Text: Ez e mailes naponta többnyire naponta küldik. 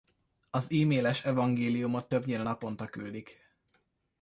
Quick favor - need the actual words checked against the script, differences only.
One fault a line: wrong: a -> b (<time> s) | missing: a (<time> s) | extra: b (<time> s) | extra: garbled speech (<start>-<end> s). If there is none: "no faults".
wrong: Ez -> Az (0.5 s)
wrong: naponta -> evangéliumot (1.2 s)